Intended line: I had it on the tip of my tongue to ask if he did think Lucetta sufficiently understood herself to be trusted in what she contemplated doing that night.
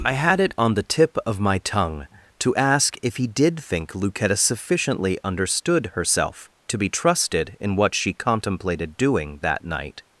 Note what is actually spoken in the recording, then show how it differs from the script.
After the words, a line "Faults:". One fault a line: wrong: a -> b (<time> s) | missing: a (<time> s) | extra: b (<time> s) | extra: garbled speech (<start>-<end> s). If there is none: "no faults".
I had it on the tip of my tongue to ask if he did think Lucetta sufficiently understood herself to be trusted in what she contemplated doing that night.
Faults:
no faults